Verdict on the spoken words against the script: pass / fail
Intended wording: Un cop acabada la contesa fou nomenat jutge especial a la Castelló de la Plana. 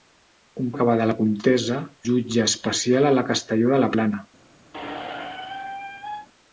fail